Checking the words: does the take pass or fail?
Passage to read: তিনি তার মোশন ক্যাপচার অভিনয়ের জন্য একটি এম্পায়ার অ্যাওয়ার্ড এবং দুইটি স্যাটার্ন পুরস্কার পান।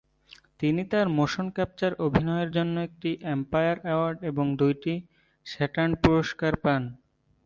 pass